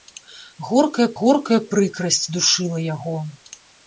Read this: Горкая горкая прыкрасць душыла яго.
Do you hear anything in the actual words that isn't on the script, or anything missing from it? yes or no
no